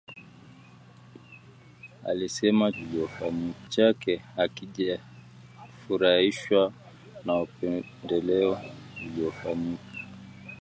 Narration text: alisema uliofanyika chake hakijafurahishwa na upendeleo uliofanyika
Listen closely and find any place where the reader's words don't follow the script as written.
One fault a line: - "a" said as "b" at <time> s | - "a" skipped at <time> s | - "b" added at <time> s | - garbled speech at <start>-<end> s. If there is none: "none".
none